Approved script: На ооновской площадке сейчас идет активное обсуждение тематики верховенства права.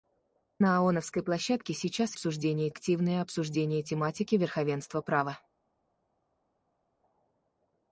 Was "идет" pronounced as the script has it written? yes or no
no